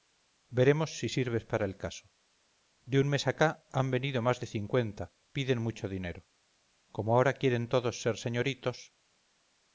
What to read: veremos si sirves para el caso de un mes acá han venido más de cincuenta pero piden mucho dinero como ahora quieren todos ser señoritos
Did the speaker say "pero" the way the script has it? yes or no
no